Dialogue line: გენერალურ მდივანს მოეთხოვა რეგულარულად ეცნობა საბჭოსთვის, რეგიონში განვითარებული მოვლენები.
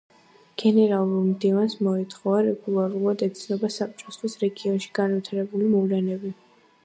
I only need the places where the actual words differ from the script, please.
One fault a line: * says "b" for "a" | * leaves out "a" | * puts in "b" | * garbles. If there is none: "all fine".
all fine